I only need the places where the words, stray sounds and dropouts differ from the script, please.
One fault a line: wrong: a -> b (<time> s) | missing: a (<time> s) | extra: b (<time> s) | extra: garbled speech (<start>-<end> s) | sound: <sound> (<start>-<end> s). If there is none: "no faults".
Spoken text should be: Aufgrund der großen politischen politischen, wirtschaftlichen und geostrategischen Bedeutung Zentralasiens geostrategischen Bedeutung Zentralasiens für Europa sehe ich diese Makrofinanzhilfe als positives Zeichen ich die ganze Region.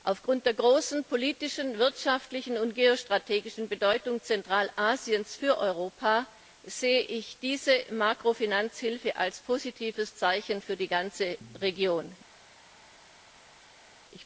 missing: politischen (1.8 s)
missing: geostrategischen Bedeutung Zentralasiens (5.3 s)
wrong: ich -> für (10.6 s)